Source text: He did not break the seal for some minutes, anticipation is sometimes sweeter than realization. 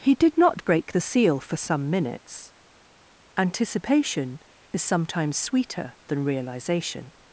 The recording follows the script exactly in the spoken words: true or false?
true